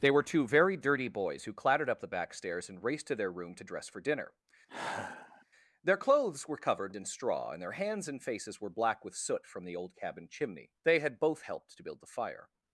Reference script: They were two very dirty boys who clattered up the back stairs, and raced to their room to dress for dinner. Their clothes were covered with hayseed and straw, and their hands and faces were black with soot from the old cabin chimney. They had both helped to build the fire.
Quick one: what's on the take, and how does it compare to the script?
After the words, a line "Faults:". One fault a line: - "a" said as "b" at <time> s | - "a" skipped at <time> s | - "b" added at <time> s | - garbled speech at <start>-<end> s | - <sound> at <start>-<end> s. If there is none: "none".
They were two very dirty boys who clattered up the back stairs, and raced to their room to dress for dinner. Their clothes were covered and straw, and their hands and faces were black with soot from the old cabin chimney. They had both helped to build the fire.
Faults:
- sigh at 4.7-5.5 s
- "with hayseed" skipped at 6.9 s